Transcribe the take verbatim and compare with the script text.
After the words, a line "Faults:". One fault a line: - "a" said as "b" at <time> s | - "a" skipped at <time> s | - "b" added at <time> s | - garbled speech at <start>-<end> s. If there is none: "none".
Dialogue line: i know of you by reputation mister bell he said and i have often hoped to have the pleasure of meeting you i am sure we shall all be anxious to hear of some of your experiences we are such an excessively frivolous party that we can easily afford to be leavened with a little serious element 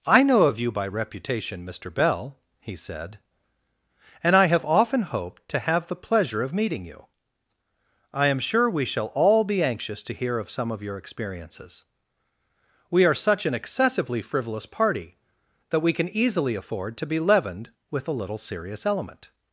i know of you by reputation mister bell he said and i have often hoped to have the pleasure of meeting you i am sure we shall all be anxious to hear of some of your experiences we are such an excessively frivolous party that we can easily afford to be leavened with a little serious element
Faults:
none